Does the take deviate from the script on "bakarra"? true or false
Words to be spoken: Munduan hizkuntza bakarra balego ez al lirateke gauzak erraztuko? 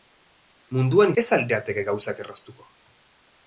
true